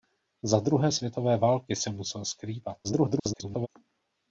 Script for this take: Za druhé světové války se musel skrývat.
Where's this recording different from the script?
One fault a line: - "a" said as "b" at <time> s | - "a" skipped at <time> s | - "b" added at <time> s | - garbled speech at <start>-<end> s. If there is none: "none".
- garbled speech at 2.8-3.7 s